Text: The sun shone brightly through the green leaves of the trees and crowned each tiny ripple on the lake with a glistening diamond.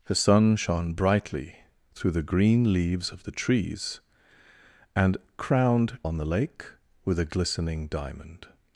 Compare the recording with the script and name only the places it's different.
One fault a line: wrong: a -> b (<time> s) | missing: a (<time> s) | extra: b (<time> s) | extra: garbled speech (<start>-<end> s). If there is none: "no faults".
missing: each tiny ripple (6.0 s)